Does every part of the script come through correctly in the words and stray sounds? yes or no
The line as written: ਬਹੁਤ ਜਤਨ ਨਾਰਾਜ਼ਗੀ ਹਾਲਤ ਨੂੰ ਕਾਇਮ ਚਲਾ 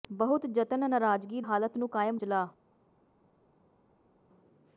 yes